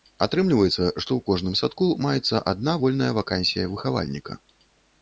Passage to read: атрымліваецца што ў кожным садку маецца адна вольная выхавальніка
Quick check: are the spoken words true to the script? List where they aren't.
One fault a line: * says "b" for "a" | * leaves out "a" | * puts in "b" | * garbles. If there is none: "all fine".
* puts in "вакансія"